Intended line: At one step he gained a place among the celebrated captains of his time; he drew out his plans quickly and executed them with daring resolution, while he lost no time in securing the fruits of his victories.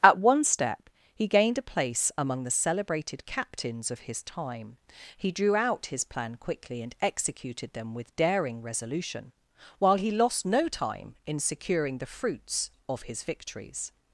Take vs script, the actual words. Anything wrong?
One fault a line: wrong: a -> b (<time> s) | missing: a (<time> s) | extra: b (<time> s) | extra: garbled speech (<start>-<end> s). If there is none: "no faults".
wrong: plans -> plan (6.0 s)